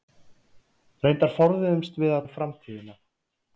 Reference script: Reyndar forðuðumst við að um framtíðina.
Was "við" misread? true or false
false